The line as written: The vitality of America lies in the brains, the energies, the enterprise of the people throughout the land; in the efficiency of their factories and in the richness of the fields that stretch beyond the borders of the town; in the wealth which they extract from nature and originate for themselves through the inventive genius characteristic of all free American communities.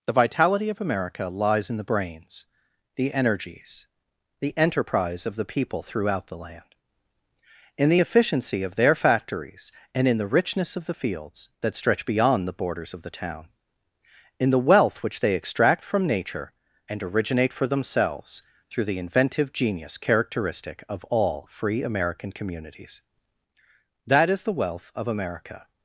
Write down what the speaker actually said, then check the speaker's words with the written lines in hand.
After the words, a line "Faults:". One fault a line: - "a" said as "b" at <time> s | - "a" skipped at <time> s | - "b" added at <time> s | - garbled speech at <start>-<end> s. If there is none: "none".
The vitality of America lies in the brains, the energies, the enterprise of the people throughout the land; in the efficiency of their factories and in the richness of the fields that stretch beyond the borders of the town; in the wealth which they extract from nature and originate for themselves through the inventive genius characteristic of all free American communities. That is the wealth of America
Faults:
- "That is the wealth of America" added at 24.1 s